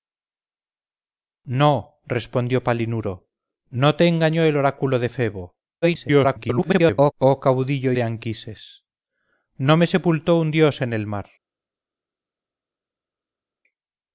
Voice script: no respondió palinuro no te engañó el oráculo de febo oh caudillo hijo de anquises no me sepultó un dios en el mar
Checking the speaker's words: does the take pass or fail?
fail